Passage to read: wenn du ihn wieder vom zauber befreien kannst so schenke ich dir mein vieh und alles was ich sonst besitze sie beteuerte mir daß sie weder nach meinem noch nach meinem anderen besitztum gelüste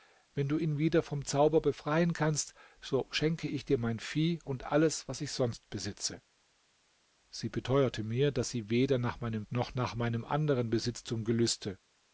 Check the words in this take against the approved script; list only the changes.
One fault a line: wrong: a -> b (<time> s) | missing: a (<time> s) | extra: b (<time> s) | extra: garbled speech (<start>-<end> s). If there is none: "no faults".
no faults